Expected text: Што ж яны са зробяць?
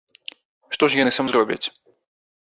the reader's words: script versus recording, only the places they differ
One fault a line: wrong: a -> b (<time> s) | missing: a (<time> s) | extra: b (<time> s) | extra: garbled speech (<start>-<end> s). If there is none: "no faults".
no faults